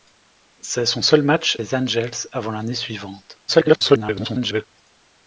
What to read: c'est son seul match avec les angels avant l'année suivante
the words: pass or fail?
fail